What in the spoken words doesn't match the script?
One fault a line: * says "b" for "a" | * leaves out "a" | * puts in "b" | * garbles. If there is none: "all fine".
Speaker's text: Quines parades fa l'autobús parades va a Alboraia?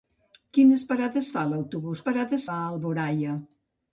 all fine